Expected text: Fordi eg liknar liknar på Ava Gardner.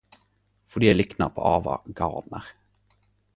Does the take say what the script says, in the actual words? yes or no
no